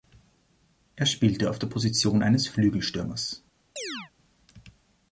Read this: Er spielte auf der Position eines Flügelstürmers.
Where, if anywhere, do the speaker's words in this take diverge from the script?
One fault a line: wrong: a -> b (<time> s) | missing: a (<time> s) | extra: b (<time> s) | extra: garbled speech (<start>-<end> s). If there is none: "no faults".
no faults